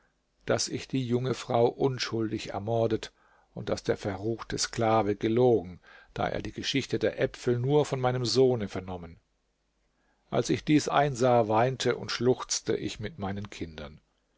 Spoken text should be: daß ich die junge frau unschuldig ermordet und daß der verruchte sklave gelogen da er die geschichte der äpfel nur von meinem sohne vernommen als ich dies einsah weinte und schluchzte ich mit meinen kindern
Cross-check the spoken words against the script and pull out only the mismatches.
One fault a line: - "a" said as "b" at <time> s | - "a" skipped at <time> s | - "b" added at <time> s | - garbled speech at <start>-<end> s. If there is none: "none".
none